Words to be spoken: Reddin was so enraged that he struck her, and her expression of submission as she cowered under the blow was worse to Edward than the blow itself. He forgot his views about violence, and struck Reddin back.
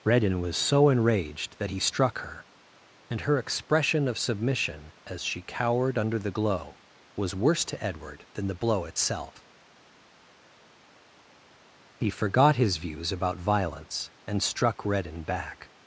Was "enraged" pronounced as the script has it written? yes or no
yes